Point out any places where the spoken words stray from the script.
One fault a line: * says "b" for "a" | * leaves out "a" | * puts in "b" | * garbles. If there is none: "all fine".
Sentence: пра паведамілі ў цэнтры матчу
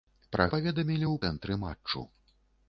all fine